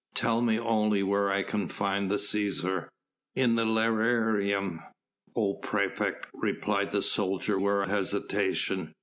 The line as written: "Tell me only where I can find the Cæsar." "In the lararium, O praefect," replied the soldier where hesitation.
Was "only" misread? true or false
false